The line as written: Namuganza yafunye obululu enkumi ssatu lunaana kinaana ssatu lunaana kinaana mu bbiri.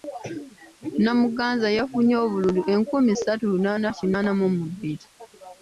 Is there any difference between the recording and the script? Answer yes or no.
yes